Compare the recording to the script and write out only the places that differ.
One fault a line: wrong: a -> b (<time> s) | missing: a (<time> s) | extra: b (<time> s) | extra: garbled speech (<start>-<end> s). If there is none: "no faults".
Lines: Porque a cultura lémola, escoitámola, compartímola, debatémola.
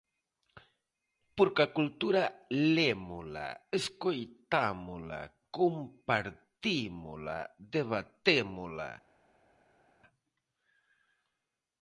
no faults